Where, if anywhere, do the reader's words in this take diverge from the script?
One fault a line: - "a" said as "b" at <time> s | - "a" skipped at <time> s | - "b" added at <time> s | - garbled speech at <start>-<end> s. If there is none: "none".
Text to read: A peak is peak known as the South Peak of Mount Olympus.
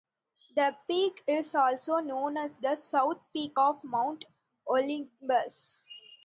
- "A" said as "The" at 0.6 s
- "peak" said as "also" at 1.5 s